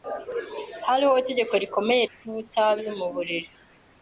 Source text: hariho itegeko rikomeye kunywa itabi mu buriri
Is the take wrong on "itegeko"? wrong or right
right